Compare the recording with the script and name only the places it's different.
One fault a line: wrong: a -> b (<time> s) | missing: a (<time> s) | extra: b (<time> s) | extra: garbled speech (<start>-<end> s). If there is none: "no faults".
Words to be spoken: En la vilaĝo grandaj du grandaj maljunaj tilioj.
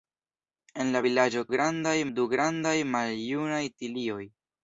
no faults